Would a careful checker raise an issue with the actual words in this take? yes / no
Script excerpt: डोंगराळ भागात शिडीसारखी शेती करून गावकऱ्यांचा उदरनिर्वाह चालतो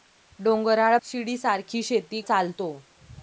yes